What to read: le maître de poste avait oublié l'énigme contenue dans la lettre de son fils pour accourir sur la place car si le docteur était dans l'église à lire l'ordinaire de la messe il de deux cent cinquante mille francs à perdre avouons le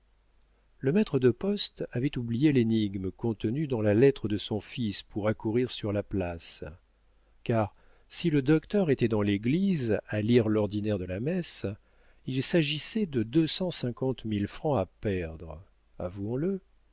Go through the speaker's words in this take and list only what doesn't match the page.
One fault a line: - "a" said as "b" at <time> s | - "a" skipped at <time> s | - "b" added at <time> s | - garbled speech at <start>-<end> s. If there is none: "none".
- "s'agissait" added at 12.4 s